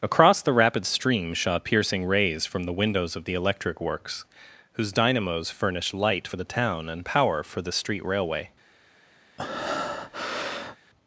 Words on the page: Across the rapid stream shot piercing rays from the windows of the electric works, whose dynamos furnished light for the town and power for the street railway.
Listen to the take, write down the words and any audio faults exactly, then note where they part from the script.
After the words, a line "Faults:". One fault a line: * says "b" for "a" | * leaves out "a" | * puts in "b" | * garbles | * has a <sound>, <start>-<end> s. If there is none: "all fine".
Across the rapid stream shot piercing rays from the windows of the electric works, whose dynamos furnished light for the town and power for the street railway.
Faults:
* has a breath, 9.4-10.8 s